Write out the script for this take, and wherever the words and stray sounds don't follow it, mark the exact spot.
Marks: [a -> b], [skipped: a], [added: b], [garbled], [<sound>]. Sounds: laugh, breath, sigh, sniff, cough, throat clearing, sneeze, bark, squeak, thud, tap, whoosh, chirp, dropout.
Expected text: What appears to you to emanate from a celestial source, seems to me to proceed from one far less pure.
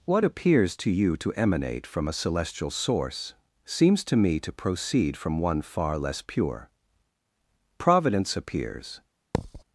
What appears to you to emanate from a celestial source, seems to me to proceed from one far less pure. [added: Providence appears] [thud]